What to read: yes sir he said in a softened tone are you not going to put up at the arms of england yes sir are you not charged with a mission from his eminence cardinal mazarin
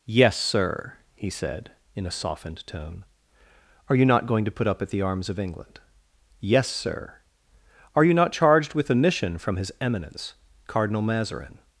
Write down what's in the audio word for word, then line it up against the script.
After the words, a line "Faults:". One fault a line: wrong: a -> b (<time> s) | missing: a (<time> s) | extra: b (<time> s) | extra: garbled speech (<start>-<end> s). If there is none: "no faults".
yes sir he said in a softened tone are you not going to put up at the arms of england yes sir are you not charged with a mission from his eminence cardinal mazarin
Faults:
no faults